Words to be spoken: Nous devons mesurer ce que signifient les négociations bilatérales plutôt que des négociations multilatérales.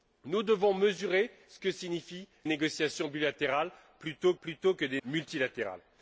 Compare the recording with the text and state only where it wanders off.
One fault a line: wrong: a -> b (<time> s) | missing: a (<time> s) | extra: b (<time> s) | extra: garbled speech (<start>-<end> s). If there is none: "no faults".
missing: les (2.3 s)
extra: plutôt (4.4 s)
missing: négociations (5.0 s)